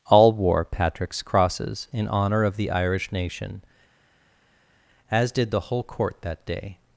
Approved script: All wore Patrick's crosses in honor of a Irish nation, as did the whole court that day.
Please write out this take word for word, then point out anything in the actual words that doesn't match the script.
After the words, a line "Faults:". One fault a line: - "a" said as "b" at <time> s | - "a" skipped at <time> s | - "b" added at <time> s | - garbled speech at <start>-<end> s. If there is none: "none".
All wore Patrick's crosses in honor of the Irish nation, as did the whole court that day.
Faults:
- "a" said as "the" at 2.5 s